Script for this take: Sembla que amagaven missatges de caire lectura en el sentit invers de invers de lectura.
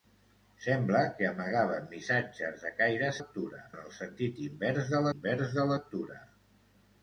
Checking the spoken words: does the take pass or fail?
pass